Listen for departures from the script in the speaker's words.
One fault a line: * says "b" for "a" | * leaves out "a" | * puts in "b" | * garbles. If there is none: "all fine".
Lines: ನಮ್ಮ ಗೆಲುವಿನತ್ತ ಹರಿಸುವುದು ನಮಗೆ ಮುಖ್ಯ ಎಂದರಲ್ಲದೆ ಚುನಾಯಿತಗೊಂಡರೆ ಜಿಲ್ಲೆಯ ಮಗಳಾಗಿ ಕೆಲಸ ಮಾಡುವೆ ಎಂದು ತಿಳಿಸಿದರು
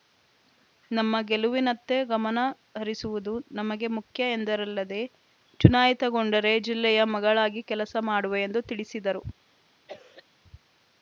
* puts in "ಗಮನ"